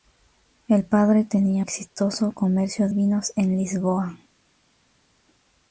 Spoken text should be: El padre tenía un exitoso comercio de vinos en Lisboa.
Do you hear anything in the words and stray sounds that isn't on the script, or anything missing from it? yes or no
yes